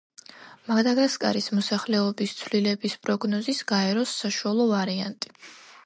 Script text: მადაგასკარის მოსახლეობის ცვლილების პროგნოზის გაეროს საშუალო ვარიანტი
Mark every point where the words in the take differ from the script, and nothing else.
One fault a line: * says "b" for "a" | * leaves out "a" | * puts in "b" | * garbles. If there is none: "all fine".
all fine